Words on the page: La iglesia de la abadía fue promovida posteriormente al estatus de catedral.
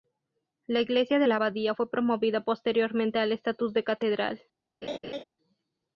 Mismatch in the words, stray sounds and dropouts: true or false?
true